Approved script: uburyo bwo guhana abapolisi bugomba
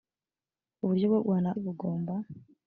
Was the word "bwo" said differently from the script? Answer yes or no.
no